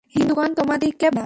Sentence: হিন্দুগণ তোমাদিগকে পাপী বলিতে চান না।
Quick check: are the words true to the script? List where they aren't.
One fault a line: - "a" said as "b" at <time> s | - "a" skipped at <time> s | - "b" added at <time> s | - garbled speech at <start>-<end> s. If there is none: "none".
- "পাপী বলিতে চান" skipped at 1.1 s